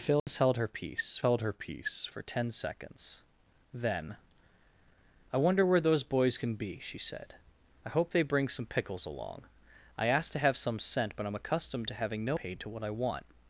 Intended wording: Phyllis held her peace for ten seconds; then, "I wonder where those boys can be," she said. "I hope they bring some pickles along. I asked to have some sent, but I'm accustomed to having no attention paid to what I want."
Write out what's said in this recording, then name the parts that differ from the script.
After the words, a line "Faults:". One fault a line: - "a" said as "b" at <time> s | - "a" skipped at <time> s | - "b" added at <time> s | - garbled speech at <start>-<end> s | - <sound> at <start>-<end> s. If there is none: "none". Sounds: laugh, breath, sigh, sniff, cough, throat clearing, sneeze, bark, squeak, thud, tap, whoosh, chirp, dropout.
Phyllis held her peace held her peace for ten seconds; then, "I wonder where those boys can be," she said. "I hope they bring some pickles along. I asked to have some sent, but I'm accustomed to having no paid to what I want."
Faults:
- dropout at 0.2-0.3 s
- "held her peace" added at 1.2 s
- "attention" skipped at 12.4 s